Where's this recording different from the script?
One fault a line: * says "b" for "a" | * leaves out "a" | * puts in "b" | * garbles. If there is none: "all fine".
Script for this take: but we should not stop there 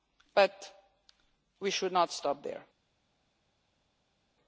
all fine